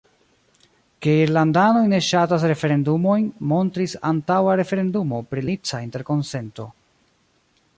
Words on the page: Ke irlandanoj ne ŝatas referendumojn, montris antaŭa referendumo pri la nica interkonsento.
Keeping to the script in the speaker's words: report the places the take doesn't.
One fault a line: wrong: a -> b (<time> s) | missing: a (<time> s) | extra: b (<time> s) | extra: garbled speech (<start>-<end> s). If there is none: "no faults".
missing: la (5.5 s)